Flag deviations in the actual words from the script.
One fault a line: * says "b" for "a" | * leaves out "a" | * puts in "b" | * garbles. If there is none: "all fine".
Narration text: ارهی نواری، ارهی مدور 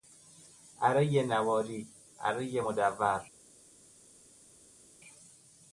all fine